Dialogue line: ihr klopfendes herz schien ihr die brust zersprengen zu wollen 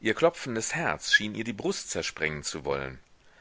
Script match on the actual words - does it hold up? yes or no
yes